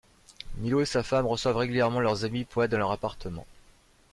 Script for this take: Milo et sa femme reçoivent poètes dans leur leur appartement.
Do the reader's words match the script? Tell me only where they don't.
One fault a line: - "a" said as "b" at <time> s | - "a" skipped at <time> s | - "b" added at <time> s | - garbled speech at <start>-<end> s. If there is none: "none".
- "régulièrement leurs amis" added at 1.6 s
- "leur" skipped at 2.9 s